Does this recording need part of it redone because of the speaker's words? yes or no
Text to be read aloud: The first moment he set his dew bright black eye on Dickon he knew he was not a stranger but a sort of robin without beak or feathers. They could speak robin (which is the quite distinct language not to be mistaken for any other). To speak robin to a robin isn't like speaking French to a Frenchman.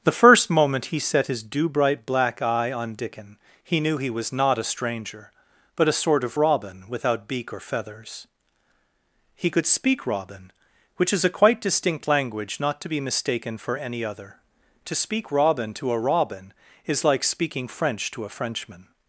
yes